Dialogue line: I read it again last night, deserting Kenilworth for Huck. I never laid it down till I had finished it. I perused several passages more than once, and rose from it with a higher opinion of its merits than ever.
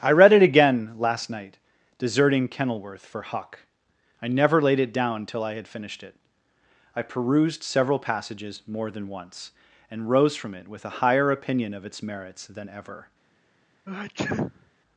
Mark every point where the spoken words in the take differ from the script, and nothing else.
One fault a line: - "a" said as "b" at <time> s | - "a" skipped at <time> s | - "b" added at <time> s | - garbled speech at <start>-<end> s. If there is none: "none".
none